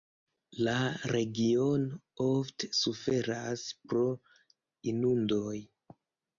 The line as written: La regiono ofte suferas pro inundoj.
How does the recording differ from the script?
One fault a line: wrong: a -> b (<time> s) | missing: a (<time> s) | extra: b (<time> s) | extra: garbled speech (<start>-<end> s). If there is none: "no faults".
no faults